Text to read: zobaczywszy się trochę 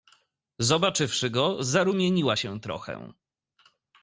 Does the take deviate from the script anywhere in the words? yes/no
yes